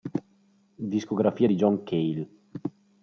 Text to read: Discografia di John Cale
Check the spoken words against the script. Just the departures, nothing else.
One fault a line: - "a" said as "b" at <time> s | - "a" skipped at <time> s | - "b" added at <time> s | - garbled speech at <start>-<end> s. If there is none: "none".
none